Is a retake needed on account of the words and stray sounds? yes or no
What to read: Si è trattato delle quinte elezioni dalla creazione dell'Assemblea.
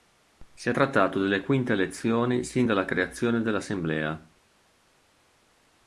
yes